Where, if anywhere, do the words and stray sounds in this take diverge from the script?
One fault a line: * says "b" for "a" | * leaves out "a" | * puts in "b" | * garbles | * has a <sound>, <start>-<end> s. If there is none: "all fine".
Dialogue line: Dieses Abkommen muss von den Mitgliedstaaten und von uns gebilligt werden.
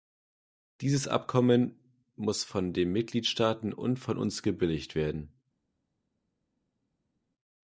all fine